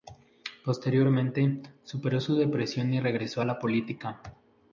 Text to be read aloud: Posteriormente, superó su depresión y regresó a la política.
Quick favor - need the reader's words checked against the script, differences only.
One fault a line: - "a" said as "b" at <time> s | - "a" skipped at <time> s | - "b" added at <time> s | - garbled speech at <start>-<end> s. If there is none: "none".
none